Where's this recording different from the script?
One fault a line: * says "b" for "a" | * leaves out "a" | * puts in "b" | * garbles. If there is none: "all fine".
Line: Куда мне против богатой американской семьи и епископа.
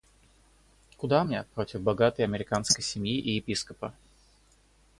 all fine